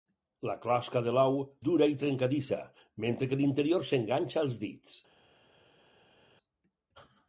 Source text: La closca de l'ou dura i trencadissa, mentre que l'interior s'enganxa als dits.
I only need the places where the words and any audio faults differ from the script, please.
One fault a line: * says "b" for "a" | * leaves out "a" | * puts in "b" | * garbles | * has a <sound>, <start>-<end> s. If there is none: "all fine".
all fine